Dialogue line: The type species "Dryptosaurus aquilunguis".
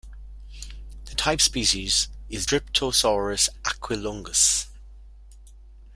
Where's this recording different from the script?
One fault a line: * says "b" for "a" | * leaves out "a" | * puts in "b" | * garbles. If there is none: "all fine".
* puts in "is"